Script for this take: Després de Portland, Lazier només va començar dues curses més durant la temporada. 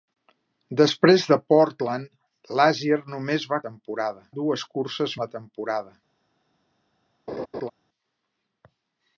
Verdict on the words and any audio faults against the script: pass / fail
fail